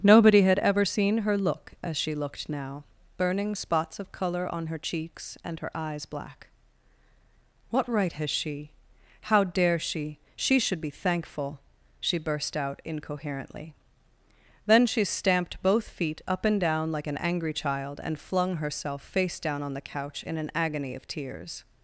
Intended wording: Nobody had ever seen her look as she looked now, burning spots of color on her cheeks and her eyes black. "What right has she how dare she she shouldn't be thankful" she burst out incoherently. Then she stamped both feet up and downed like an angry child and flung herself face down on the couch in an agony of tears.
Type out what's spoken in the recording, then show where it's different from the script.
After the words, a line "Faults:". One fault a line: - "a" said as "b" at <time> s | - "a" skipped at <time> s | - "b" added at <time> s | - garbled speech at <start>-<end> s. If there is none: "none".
Nobody had ever seen her look as she looked now, burning spots of color on her cheeks and her eyes black. "What right has she how dare she she should be thankful" she burst out incoherently. Then she stamped both feet up and down like an angry child and flung herself face down on the couch in an agony of tears.
Faults:
- "shouldn't" said as "should" at 10.6 s
- "downed" said as "down" at 16.6 s